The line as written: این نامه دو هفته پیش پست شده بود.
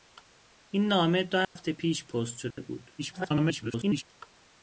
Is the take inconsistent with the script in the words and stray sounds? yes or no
yes